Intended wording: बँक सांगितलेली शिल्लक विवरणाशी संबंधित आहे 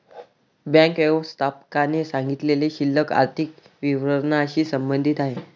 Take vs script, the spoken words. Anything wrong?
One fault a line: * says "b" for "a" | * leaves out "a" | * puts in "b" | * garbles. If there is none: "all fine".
* puts in "व्यवस्थापकाने"
* puts in "आर्थिक"